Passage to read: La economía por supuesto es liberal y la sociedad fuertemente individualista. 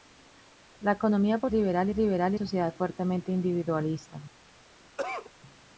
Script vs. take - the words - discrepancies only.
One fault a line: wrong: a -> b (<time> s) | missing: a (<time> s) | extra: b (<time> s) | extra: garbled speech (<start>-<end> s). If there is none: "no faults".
wrong: supuesto -> liberal (1.5 s)
missing: la (2.4 s)